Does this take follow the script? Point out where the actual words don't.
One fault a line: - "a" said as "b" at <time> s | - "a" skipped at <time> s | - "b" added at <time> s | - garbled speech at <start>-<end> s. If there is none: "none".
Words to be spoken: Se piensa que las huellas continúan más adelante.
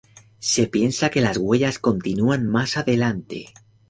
none